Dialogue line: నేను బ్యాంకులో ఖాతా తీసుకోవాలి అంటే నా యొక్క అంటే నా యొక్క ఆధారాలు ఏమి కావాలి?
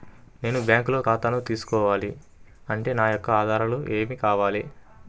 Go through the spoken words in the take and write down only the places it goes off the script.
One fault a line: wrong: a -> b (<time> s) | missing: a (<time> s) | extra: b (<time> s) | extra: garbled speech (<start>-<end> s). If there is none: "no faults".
missing: అంటే నా యొక్క (3.3 s)